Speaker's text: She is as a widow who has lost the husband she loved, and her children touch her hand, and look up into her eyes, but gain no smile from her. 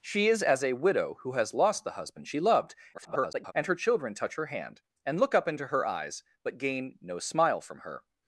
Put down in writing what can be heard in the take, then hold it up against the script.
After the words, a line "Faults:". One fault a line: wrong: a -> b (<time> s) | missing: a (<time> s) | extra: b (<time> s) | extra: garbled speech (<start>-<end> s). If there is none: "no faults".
She is as a widow who has lost the husband she loved, [garbled] and her children touch her hand, and look up into her eyes, but gain no smile from her.
Faults:
extra: garbled speech (2.9-3.5 s)